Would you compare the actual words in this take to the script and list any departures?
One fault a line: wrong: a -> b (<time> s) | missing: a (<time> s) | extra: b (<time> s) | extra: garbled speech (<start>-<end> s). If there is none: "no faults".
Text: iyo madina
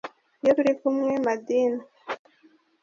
extra: turi kumwe (0.5 s)